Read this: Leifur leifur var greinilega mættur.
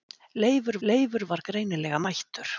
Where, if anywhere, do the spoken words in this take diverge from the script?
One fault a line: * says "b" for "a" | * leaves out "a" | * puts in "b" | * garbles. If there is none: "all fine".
all fine